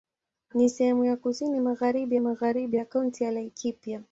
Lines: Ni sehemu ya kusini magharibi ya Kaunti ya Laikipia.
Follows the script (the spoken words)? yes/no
no